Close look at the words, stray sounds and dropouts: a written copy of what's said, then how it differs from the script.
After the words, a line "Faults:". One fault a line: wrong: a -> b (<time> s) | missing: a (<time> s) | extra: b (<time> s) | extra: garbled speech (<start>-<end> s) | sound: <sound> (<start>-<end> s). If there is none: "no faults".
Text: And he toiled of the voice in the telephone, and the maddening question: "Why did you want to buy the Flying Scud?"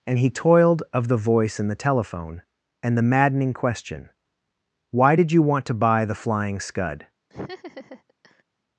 And he toiled of the voice in the telephone, and the maddening question: "Why did you want to buy the Flying Scud?"
Faults:
sound: laugh (7.3-8.4 s)